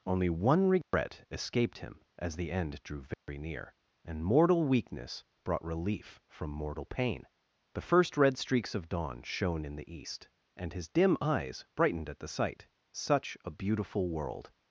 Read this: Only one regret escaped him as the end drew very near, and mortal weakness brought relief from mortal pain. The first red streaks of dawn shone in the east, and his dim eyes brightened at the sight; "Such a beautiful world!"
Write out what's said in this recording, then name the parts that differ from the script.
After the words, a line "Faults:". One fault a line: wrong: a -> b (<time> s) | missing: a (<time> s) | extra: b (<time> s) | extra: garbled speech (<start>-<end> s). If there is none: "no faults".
Only one regret escaped him as the end drew very near, and mortal weakness brought relief from mortal pain. The first red streaks of dawn shone in the east, and his dim eyes brightened at the sight; "Such a beautiful world!"
Faults:
no faults